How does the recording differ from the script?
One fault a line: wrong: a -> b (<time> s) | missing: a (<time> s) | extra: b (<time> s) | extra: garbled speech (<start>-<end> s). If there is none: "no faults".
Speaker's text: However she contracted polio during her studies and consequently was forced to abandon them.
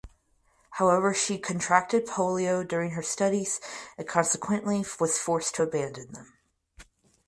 no faults